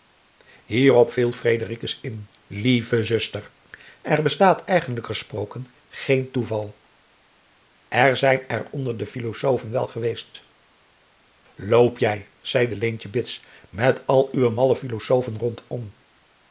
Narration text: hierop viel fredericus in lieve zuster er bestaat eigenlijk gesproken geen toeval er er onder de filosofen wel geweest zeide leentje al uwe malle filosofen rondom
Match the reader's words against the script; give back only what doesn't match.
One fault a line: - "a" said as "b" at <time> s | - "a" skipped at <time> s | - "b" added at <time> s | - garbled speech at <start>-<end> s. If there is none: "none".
- "zijn" added at 8.2 s
- "loop jij" added at 11.6 s
- "bits met" added at 13.1 s